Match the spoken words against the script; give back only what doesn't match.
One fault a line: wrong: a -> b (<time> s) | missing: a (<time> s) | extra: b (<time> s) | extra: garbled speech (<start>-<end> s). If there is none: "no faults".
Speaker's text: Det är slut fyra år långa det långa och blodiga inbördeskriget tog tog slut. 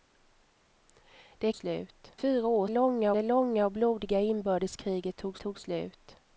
no faults